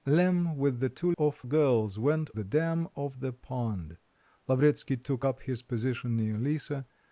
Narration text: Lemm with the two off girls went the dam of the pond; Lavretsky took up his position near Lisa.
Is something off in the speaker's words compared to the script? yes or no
no